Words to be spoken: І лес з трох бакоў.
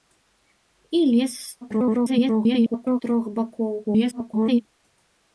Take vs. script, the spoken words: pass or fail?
fail